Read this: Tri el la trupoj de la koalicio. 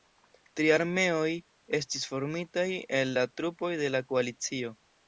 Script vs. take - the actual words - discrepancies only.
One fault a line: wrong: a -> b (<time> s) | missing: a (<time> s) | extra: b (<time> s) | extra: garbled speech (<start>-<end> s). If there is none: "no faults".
extra: armeoj estis formitaj (0.8 s)